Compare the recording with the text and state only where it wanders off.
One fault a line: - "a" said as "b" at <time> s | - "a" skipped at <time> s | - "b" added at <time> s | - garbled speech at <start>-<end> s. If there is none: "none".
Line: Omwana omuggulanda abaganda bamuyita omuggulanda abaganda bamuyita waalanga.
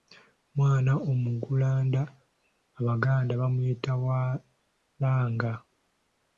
- "omuggulanda abaganda bamuyita" skipped at 3.9 s